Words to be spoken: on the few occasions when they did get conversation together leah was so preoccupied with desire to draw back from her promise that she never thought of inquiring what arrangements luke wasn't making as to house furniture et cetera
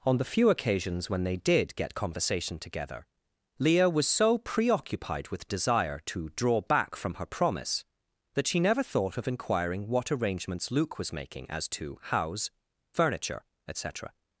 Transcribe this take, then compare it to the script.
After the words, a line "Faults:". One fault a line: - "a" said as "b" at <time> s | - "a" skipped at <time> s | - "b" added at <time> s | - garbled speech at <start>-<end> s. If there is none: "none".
on the few occasions when they did get conversation together leah was so preoccupied with desire to draw back from her promise that she never thought of inquiring what arrangements luke was making as to house furniture et cetera
Faults:
- "wasn't" said as "was" at 11.0 s